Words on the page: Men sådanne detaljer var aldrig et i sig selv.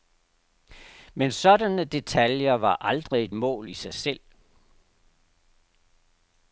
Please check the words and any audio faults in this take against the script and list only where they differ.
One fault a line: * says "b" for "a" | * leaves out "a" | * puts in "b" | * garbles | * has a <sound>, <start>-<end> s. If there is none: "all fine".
* puts in "mål"